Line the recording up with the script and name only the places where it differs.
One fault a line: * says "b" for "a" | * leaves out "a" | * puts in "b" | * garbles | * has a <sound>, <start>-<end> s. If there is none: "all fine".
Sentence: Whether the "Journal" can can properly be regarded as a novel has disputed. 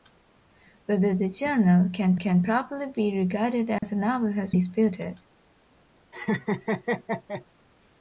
* has a dropout, 3.8-3.8 s
* has a laugh, 6.1-7.4 s